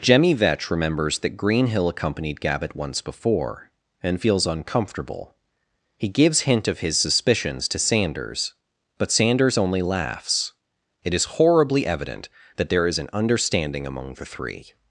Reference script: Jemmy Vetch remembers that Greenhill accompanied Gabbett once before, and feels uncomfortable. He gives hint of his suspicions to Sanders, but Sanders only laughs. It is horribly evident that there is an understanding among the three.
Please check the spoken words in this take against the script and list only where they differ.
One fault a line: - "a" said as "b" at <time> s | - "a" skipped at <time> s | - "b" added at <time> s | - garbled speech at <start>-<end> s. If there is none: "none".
none